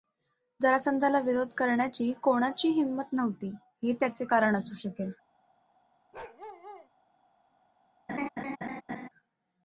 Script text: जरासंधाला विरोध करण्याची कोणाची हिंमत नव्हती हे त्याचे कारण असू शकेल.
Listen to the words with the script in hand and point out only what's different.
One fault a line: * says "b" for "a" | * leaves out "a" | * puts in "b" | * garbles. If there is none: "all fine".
all fine